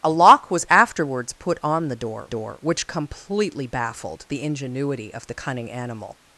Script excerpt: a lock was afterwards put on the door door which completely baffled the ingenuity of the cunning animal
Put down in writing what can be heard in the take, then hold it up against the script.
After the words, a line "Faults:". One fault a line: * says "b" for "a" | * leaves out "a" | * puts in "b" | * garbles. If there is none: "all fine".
a lock was afterwards put on the door door which completely baffled the ingenuity of the cunning animal
Faults:
all fine